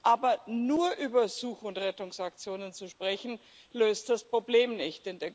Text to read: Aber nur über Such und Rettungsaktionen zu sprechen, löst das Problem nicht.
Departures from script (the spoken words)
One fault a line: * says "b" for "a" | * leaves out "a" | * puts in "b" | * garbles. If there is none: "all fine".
all fine